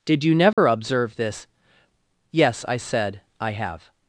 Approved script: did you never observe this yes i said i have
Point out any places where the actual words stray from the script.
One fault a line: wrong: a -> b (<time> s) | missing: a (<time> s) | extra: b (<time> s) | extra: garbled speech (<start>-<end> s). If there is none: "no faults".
no faults